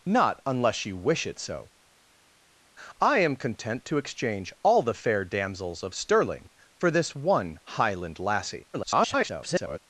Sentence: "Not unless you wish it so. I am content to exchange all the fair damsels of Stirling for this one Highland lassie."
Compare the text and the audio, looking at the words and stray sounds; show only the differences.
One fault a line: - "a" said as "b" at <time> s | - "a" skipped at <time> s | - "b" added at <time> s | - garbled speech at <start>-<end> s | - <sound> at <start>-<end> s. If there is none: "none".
- garbled speech at 8.7-9.8 s